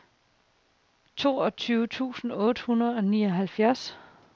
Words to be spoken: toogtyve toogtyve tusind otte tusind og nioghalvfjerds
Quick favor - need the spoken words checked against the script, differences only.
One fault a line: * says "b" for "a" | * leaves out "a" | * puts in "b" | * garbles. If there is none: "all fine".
* leaves out "toogtyve"
* says "hundrede" for "tusind"